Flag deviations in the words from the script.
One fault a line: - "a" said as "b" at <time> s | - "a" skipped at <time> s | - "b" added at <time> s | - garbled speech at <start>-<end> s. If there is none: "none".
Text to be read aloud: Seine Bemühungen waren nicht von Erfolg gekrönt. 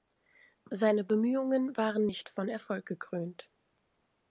none